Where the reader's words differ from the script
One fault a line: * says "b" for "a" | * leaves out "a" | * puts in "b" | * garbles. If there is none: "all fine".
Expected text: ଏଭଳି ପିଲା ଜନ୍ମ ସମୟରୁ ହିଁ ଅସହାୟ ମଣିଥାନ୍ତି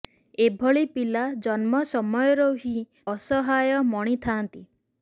all fine